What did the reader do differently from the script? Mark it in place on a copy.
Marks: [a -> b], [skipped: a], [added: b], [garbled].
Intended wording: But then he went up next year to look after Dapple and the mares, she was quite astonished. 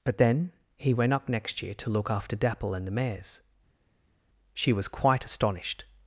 But then he went up next year to look after Dapple and the mares, she was quite astonished.